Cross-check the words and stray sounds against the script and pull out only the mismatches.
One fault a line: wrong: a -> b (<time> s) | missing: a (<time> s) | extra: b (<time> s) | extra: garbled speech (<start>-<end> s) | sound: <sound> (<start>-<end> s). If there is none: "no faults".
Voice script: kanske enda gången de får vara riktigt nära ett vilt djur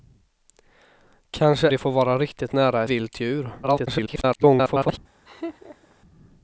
missing: enda gången (1.7 s)
missing: ett (2.8 s)
extra: garbled speech (3.6-5.0 s)
sound: laugh (5.3-6.0 s)